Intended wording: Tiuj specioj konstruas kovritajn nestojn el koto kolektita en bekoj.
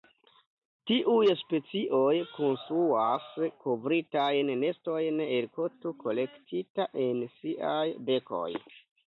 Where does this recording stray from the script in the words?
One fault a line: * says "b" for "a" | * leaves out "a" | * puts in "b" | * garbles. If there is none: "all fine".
* puts in "siaj"